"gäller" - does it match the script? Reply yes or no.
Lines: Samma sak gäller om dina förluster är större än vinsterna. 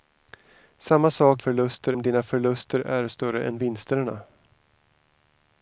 no